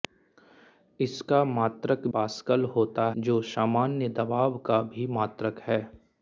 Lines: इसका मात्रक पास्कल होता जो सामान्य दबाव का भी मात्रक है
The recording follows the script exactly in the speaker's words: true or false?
true